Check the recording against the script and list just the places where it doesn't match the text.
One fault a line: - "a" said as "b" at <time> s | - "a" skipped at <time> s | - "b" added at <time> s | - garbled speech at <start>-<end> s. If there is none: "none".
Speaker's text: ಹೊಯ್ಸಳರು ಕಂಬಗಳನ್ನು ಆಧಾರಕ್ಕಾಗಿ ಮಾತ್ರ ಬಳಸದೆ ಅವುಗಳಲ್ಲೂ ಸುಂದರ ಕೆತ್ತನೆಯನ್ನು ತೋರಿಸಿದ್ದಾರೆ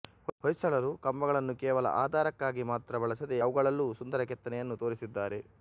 - "ಕೇವಲ" added at 1.6 s